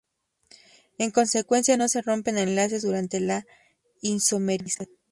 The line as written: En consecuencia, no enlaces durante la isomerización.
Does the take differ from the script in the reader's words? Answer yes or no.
yes